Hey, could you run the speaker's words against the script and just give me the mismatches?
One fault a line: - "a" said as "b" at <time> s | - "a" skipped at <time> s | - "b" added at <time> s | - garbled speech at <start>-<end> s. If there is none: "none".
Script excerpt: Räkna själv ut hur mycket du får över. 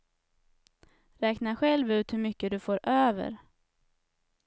none